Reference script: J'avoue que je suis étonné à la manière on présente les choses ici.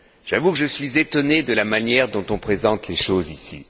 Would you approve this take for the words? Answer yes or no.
no